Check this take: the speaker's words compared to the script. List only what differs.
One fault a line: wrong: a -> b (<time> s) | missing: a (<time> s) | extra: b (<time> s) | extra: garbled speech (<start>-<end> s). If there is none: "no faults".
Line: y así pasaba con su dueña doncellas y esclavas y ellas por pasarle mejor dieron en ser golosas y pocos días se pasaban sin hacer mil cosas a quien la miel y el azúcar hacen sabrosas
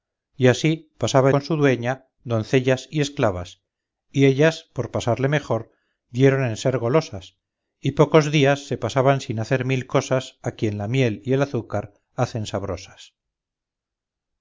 no faults